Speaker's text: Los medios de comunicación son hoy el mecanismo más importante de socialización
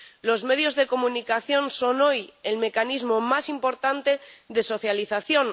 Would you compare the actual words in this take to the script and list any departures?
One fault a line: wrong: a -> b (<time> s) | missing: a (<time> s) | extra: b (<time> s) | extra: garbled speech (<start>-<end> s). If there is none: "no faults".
no faults